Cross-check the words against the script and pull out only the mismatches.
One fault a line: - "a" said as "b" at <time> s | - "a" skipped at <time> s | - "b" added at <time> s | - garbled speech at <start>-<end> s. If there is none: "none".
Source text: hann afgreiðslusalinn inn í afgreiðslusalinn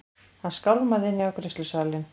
- "afgreiðslusalinn" said as "skálmaði" at 0.5 s